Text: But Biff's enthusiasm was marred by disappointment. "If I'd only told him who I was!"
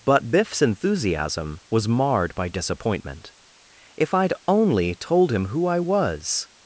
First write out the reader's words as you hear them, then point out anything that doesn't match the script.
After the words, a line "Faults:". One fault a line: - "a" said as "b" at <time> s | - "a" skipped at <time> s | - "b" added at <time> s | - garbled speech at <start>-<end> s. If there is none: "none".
But Biff's enthusiasm was marred by disappointment. "If I'd only told him who I was!"
Faults:
none